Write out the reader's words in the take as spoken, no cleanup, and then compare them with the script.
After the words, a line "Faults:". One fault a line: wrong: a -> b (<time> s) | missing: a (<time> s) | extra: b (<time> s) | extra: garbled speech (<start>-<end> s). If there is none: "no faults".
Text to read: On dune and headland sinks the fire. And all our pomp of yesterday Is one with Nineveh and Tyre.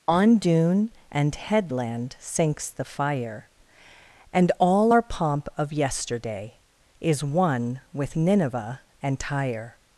On dune and headland sinks the fire. And all our pomp of yesterday Is one with Nineveh and Tyre.
Faults:
no faults